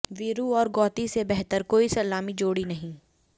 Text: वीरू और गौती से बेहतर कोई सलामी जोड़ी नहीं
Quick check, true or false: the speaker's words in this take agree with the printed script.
true